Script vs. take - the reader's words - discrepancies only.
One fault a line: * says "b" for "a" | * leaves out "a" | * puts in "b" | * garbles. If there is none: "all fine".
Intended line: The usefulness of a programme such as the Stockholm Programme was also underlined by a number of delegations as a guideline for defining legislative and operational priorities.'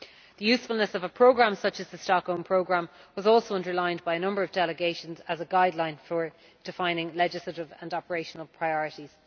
all fine